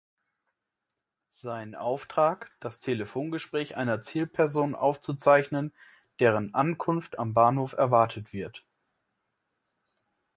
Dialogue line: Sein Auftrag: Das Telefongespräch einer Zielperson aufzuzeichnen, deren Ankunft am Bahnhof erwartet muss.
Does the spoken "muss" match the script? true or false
false